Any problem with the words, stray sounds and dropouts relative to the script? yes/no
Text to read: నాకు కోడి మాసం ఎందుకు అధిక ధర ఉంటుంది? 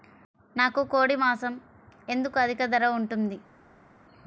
no